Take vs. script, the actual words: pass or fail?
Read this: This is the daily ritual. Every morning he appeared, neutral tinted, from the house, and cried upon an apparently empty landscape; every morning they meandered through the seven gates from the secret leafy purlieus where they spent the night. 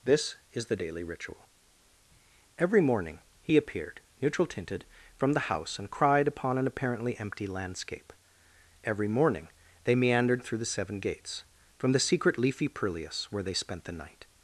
pass